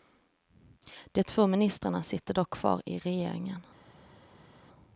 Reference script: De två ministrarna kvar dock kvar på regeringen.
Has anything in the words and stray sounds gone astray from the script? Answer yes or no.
yes